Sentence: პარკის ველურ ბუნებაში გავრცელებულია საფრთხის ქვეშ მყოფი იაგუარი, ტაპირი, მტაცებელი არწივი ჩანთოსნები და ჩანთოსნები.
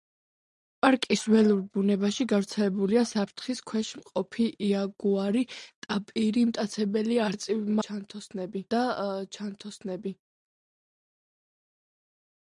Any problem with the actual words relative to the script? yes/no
no